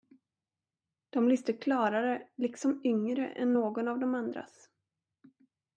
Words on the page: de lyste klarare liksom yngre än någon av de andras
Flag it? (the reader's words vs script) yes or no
no